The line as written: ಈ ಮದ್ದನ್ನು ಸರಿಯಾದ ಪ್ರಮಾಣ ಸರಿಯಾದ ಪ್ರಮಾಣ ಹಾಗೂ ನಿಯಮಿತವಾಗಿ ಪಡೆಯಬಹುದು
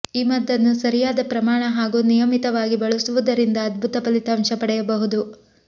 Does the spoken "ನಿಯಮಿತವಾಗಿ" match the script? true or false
false